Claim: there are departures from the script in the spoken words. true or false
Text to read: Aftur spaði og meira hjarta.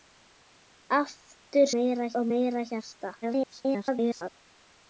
true